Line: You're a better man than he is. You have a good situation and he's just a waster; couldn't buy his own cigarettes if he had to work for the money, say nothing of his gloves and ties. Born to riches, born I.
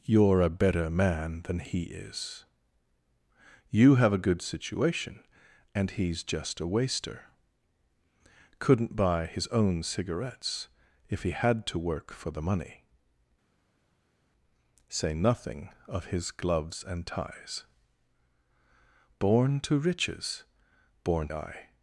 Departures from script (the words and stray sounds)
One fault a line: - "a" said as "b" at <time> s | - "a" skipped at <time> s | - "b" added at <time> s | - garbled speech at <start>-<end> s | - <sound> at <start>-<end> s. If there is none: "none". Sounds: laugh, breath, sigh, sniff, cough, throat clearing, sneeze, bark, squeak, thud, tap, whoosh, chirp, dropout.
none